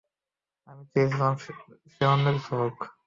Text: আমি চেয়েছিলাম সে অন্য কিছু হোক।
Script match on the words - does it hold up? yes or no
yes